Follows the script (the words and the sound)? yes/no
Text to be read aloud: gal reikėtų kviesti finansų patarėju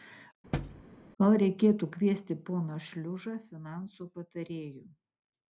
no